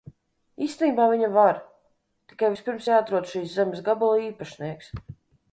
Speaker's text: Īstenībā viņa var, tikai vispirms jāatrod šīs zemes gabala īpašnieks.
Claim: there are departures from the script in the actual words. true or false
false